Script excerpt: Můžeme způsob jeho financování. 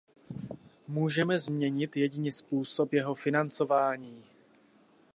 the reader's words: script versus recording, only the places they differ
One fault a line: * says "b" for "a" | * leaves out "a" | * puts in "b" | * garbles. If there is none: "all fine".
* puts in "změnit jedině"